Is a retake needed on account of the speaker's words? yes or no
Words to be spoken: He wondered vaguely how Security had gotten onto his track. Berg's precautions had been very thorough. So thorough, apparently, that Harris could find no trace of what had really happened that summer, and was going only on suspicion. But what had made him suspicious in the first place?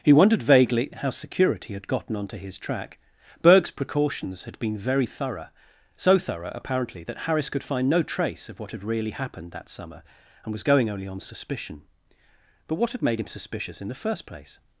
no